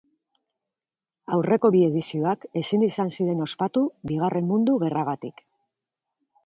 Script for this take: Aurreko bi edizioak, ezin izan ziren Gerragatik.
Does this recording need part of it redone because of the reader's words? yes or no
yes